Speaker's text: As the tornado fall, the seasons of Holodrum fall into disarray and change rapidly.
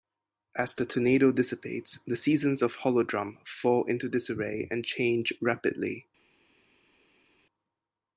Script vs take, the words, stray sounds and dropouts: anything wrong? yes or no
yes